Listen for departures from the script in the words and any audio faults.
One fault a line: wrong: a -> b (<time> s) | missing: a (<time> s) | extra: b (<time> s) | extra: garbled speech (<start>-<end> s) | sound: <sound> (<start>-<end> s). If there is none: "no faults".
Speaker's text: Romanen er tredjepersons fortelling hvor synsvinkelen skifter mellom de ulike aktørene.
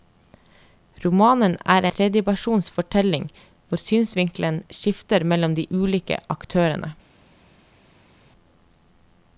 no faults